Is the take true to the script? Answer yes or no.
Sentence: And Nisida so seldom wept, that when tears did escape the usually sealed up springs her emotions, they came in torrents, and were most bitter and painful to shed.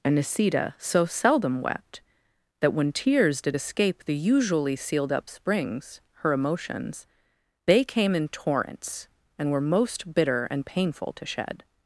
yes